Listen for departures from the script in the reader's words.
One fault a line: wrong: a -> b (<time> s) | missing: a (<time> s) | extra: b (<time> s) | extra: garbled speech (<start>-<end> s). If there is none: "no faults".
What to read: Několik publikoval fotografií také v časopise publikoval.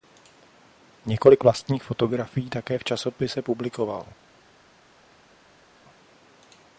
wrong: publikoval -> vlastních (1.4 s)